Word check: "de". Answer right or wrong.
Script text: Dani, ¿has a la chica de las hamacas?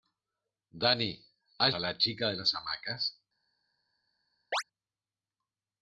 right